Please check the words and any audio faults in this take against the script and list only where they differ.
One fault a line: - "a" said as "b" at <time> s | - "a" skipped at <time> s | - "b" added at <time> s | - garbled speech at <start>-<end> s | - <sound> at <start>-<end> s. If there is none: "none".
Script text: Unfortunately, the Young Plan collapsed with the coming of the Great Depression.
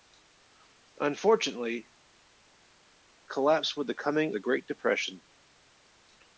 - "the Young Plan" skipped at 1.9 s
- "of" skipped at 4.4 s